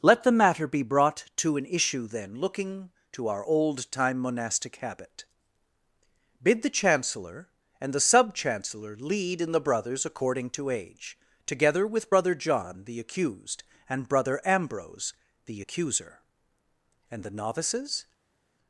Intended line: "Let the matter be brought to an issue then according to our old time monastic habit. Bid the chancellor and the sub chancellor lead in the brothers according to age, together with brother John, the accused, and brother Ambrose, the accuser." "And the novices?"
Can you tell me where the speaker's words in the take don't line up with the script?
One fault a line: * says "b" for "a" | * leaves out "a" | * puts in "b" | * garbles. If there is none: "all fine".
* says "looking" for "according"